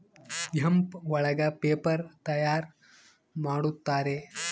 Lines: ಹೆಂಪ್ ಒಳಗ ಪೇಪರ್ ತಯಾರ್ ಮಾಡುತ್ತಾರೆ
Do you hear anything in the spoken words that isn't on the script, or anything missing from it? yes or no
no